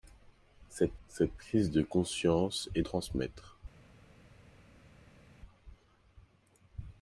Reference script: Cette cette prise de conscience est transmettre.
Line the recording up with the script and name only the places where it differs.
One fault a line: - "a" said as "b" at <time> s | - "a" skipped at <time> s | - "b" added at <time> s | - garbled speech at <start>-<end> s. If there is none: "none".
none